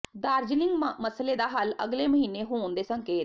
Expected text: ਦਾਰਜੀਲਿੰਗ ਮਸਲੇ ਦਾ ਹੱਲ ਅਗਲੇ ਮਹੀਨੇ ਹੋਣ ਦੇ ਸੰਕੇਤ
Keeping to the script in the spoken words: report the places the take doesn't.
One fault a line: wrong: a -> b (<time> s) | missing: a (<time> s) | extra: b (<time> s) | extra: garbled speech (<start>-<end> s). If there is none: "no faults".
no faults